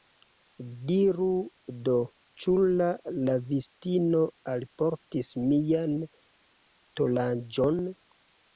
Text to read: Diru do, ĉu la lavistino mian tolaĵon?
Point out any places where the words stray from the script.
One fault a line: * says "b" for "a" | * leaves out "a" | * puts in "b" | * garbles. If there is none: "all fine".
* puts in "alportis"